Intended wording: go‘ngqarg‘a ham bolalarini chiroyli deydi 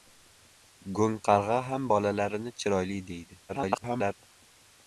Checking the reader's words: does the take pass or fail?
fail